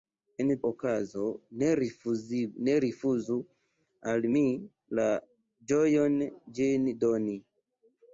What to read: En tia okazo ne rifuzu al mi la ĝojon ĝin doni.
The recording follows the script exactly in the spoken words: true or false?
false